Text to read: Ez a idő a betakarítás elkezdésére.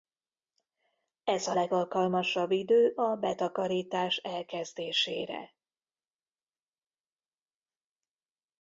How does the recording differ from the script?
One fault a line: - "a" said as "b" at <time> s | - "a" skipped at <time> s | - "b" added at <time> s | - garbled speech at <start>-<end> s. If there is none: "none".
- "legalkalmasabb" added at 1.5 s